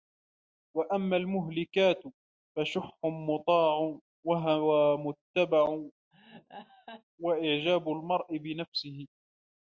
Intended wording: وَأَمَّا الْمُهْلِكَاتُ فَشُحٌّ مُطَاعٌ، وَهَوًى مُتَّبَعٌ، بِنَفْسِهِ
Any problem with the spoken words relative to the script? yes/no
yes